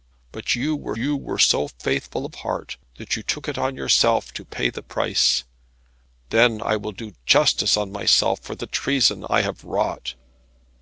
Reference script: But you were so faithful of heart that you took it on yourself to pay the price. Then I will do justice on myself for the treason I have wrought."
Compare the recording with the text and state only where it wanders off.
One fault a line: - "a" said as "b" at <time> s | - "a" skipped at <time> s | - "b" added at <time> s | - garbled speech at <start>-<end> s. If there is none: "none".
- "you were" added at 0.9 s